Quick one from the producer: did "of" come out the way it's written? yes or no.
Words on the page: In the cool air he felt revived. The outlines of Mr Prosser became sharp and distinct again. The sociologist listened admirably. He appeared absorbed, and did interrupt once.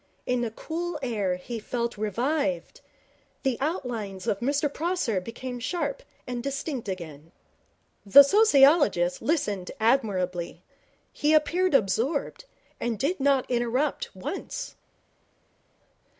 yes